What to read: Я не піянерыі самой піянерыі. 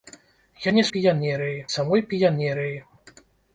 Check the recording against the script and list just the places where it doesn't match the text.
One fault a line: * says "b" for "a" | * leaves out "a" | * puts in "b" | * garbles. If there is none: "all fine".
all fine